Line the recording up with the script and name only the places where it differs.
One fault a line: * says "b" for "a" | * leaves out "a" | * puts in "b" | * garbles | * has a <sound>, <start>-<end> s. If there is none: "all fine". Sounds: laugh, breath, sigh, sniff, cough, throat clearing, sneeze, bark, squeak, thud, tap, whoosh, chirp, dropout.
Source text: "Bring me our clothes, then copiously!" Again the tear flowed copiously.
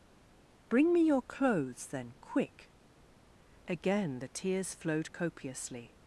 * says "your" for "our"
* says "quick" for "copiously"
* says "tears" for "tear"